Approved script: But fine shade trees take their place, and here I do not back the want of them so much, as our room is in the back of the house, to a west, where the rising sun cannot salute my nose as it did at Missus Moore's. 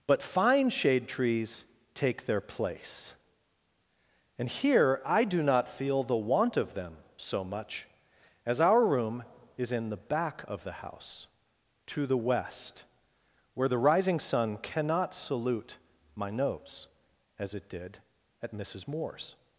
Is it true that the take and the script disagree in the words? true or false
true